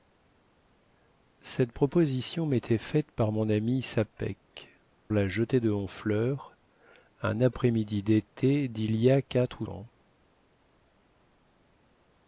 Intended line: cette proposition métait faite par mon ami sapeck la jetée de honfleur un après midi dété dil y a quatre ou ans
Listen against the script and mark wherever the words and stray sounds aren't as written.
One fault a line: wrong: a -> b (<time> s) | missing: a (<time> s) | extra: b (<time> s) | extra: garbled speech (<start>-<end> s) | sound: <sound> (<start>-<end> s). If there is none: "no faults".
no faults